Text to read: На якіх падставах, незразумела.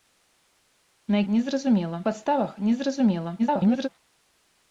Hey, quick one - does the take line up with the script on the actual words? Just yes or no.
no